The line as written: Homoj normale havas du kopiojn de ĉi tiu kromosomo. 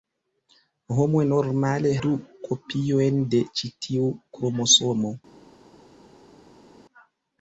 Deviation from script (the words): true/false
true